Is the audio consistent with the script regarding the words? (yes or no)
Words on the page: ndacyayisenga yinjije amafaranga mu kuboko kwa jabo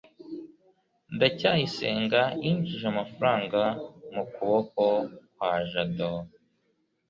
yes